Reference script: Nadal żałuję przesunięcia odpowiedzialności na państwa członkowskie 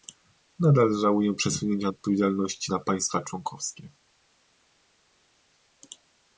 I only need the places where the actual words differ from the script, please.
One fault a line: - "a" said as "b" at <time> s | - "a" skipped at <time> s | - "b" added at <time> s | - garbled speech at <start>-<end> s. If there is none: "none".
none